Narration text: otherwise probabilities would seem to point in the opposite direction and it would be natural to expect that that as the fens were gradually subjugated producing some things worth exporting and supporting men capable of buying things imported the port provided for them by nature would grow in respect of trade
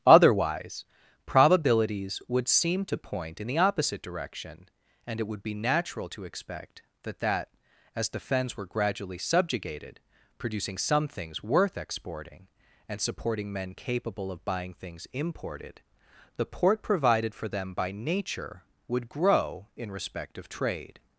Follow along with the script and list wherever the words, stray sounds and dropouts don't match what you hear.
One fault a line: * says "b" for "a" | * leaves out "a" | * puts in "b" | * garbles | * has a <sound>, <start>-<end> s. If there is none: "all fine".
all fine